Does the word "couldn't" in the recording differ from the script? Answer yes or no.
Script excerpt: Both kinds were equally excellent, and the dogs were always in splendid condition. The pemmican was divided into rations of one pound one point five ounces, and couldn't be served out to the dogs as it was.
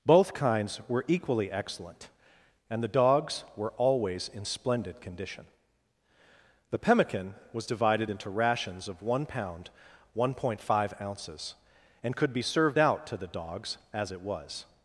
yes